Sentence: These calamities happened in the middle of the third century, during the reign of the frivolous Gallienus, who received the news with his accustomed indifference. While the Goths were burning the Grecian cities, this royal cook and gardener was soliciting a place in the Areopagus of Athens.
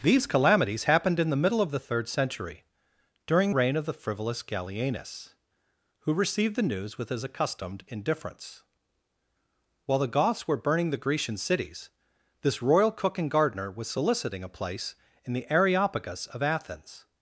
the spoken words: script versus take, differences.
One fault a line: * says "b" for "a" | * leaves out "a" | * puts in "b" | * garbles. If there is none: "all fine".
* leaves out "the"